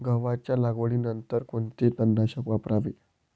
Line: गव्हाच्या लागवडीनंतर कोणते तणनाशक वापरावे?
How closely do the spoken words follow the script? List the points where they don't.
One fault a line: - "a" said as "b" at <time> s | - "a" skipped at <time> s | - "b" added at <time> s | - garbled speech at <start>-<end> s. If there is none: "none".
none